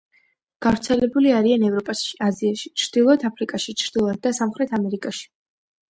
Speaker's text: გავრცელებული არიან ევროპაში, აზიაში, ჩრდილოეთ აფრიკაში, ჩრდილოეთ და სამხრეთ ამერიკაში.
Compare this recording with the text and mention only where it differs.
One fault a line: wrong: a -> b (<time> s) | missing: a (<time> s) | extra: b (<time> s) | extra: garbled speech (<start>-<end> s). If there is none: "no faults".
no faults